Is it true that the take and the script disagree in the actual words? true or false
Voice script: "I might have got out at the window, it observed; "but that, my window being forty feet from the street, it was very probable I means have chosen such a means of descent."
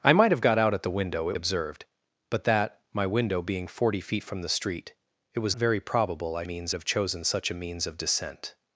false